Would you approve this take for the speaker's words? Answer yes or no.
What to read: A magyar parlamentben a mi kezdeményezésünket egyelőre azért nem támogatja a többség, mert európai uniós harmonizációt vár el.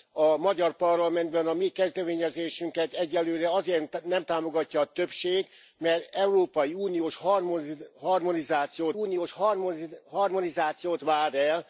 no